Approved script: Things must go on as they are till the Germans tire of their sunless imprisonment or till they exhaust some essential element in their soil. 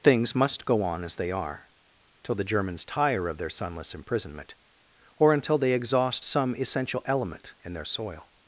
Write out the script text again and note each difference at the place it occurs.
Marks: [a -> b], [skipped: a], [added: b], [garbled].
Things must go on as they are till the Germans tire of their sunless imprisonment or [till -> until] they exhaust some essential element in their soil.